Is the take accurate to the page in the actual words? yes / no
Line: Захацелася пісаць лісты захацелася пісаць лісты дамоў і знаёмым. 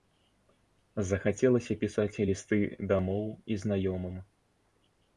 no